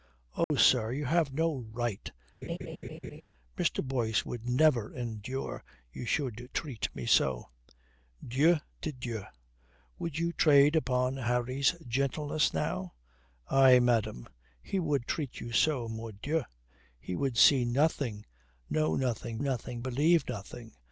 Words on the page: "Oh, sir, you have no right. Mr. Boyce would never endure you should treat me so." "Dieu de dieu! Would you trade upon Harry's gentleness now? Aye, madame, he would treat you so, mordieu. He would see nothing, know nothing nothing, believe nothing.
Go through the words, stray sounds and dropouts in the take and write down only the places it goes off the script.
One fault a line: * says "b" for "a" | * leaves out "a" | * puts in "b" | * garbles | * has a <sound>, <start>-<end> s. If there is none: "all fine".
* has a dropout, 0.4-0.5 s
* has a laugh, 2.4-3.2 s